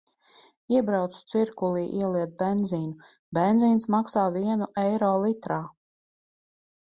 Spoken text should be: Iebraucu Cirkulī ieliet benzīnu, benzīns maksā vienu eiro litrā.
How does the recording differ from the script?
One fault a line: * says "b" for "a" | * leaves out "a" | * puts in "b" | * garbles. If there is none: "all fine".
all fine